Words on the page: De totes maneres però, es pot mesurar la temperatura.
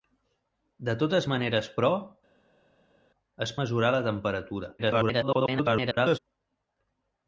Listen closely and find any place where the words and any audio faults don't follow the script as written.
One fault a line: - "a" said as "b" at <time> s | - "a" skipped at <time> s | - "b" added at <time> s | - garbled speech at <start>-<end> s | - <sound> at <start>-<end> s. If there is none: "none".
- "pot" skipped at 3.5 s
- garbled speech at 4.8-6.2 s